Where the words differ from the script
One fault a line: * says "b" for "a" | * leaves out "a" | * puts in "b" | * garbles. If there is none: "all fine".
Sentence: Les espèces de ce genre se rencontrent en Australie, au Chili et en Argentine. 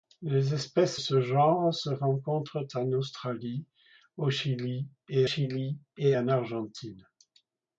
* leaves out "de"
* puts in "Chili et"